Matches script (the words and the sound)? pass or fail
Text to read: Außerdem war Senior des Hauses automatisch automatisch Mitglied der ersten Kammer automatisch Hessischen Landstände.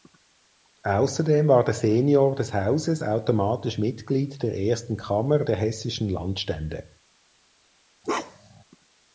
fail